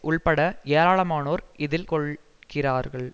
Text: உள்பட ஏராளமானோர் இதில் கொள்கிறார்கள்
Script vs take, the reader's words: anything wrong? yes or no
no